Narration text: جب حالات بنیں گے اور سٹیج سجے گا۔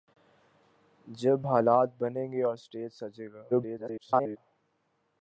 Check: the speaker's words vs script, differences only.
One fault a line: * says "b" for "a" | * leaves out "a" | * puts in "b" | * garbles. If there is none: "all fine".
* garbles